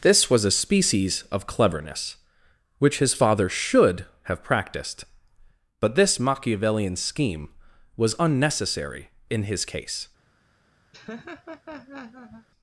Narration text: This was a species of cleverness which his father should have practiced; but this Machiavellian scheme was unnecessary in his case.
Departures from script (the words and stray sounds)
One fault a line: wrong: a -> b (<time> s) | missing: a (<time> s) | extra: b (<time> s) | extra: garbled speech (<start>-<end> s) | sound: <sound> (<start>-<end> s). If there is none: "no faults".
sound: laugh (10.9-12.5 s)